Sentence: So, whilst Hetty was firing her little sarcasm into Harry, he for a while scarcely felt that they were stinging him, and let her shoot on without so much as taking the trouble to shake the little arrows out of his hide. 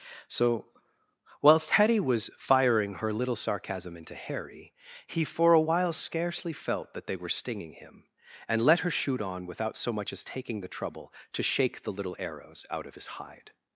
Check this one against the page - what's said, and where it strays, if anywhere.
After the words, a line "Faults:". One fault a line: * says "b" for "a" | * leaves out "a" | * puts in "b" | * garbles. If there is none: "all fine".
So, whilst Hetty was firing her little sarcasm into Harry, he for a while scarcely felt that they were stinging him, and let her shoot on without so much as taking the trouble to shake the little arrows out of his hide.
Faults:
all fine